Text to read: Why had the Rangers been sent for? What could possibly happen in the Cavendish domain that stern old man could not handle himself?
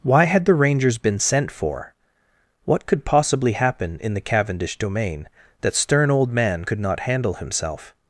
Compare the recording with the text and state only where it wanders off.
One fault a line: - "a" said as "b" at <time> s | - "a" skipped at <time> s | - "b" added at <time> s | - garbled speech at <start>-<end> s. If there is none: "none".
none